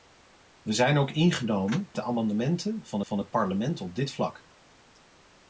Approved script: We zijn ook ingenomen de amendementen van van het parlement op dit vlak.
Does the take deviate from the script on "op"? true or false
false